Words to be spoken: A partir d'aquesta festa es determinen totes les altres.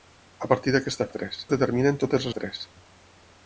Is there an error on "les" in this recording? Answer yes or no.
yes